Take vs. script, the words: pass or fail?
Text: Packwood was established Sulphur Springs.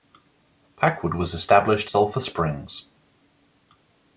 pass